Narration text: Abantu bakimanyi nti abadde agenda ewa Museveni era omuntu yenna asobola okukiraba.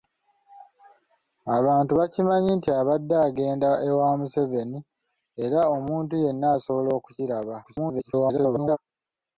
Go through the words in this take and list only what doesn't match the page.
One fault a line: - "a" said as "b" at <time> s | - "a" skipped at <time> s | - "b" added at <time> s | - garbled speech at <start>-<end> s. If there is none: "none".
- garbled speech at 7.6-8.8 s